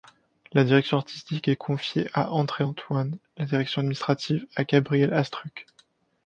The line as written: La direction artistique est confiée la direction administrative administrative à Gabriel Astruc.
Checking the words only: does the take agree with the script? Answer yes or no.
no